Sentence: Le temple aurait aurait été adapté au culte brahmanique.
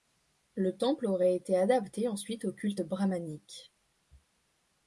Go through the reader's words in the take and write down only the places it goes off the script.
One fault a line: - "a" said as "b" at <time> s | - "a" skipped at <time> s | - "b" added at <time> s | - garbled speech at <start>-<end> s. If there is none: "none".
- "aurait" skipped at 1.4 s
- "ensuite" added at 2.1 s